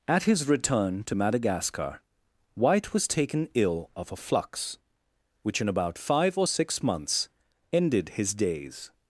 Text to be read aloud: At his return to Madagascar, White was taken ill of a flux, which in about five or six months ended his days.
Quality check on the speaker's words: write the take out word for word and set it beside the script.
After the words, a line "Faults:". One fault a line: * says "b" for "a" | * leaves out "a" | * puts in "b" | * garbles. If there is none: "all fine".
At his return to Madagascar, White was taken ill of a flux, which in about five or six months ended his days.
Faults:
all fine